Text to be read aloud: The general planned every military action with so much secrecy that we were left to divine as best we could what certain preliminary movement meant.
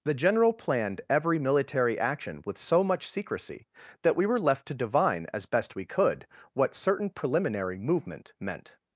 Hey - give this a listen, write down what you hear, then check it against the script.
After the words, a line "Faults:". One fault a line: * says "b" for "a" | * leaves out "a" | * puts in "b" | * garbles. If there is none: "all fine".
The general planned every military action with so much secrecy that we were left to divine as best we could what certain preliminary movement meant.
Faults:
all fine